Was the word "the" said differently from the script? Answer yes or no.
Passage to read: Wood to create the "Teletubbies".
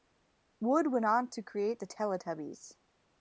no